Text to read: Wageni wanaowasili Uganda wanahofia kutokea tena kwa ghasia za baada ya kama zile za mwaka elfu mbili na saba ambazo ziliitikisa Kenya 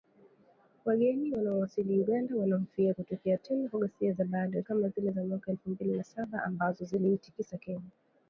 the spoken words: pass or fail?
pass